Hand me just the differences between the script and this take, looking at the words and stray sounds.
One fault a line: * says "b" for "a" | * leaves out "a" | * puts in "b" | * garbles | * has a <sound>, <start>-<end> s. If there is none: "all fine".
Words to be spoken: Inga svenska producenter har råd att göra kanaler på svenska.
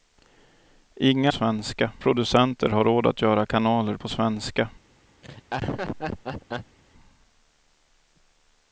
* has a laugh, 5.2-6.8 s